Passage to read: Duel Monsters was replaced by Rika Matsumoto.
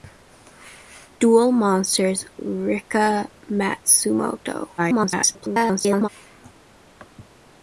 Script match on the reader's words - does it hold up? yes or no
no